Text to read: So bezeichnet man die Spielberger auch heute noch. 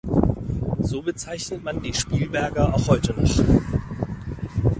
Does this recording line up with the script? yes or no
yes